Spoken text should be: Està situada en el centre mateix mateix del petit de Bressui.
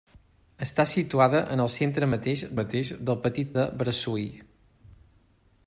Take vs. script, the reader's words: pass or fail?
pass